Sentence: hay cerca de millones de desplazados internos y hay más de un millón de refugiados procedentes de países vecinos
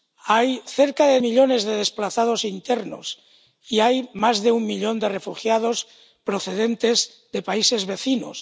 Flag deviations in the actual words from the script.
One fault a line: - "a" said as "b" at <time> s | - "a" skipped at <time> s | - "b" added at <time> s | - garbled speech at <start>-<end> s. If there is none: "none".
none